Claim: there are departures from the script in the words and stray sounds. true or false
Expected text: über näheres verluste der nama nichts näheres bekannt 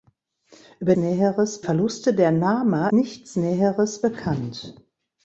false